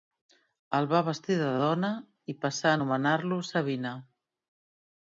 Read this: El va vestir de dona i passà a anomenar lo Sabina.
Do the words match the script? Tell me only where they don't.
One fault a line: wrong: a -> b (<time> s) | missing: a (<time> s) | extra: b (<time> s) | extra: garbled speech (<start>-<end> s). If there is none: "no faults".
no faults